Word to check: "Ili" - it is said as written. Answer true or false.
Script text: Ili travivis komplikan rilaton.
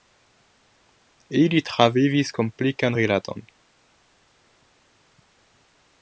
true